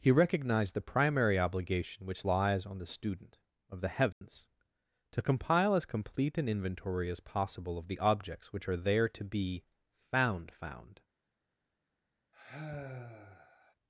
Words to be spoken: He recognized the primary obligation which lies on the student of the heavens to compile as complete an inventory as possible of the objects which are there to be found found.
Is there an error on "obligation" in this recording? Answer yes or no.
no